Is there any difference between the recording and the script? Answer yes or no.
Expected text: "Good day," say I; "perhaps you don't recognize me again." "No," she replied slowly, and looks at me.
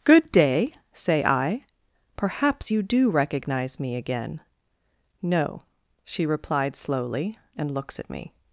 yes